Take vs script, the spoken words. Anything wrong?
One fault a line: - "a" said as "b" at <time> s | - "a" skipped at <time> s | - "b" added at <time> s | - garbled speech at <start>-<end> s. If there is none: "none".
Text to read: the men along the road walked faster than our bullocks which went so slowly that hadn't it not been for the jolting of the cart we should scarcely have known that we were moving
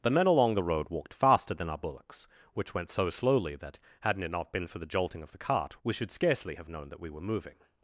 none